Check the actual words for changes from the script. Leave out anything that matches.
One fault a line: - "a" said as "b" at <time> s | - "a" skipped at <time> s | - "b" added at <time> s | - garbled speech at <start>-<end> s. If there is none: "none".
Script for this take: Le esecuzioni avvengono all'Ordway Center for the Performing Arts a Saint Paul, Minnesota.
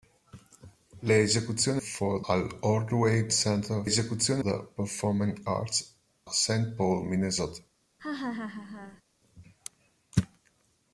- "avvengono" said as "for" at 1.8 s
- "for" said as "esecuzioni" at 3.8 s
- "a" skipped at 5.9 s